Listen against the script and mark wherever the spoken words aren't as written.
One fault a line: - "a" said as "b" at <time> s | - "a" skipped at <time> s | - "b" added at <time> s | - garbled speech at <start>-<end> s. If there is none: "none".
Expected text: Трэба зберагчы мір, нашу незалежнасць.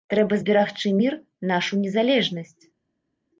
none